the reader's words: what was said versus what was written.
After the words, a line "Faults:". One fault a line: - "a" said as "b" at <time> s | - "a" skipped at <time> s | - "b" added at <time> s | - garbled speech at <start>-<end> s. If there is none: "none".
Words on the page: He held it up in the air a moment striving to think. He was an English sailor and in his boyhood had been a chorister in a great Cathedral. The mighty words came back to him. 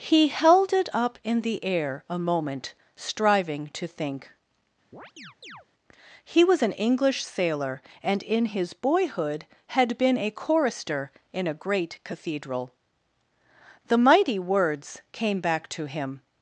He held it up in the air a moment striving to think. He was an English sailor and in his boyhood had been a chorister in a great Cathedral. The mighty words came back to him.
Faults:
none